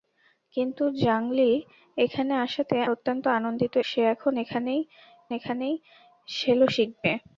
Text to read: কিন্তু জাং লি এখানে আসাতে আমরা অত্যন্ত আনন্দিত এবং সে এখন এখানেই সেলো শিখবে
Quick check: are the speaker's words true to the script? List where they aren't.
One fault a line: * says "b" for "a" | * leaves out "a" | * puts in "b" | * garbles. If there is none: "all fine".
* leaves out "আমরা"
* leaves out "এবং"
* puts in "এখানেই"